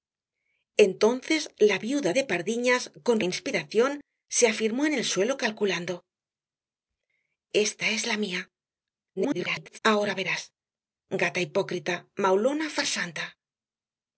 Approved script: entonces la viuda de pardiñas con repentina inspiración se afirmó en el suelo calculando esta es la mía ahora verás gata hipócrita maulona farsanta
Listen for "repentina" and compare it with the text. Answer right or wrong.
wrong